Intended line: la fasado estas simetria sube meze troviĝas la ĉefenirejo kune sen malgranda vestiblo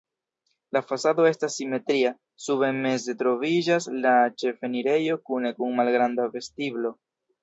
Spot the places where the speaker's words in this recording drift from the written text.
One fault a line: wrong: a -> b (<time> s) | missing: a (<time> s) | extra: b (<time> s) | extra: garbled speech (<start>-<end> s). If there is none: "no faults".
wrong: sen -> kun (5.6 s)